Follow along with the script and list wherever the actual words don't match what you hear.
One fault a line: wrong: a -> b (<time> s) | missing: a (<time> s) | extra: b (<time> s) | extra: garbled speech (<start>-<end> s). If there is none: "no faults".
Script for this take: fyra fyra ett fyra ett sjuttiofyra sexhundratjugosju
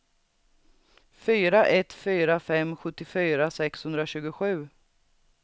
missing: fyra (1.6 s)
wrong: ett -> fem (2.4 s)